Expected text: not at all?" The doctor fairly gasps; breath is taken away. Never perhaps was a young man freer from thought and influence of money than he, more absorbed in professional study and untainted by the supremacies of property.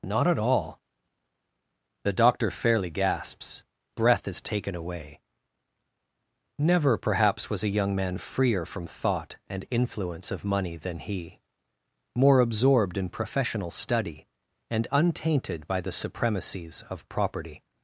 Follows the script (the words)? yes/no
yes